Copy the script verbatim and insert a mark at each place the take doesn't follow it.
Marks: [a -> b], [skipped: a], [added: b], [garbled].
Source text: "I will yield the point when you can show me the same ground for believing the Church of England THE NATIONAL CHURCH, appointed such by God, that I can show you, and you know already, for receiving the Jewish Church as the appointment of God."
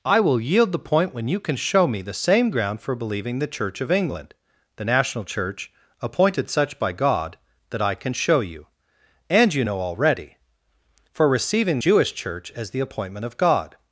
"I will yield the point when you can show me the same ground for believing the Church of England THE NATIONAL CHURCH, appointed such by God, that I can show you, and you know already, for receiving [skipped: the] Jewish Church as the appointment of God."